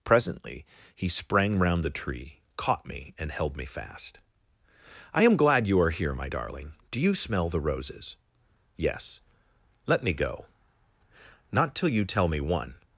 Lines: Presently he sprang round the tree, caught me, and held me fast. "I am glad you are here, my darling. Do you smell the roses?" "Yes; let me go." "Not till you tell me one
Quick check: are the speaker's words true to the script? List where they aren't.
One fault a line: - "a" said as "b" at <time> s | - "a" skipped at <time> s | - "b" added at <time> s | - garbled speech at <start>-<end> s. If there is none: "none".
none